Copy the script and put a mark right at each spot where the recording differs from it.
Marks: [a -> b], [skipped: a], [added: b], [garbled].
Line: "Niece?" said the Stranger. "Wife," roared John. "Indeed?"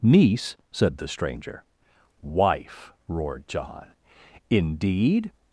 "Niece?" said the Stranger. "Wife," roared John. "Indeed?"